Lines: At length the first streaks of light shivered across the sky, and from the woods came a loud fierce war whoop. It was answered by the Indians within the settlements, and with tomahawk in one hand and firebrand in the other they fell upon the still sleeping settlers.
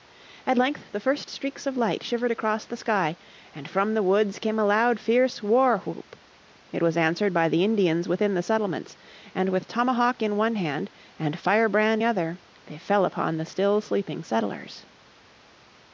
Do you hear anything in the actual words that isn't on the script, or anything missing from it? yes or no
yes